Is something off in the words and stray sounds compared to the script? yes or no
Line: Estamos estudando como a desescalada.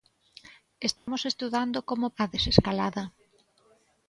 yes